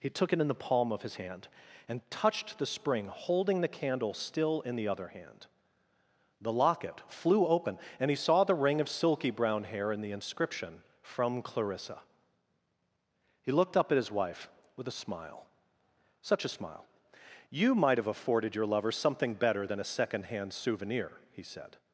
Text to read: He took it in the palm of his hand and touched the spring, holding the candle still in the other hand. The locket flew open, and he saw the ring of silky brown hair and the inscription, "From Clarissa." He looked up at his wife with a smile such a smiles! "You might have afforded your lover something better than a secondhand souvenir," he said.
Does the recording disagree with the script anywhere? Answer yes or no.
yes